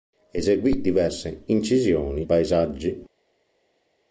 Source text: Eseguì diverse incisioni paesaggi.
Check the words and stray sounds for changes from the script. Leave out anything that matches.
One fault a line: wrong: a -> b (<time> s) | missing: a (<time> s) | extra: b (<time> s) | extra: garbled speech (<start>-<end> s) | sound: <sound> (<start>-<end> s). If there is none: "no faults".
no faults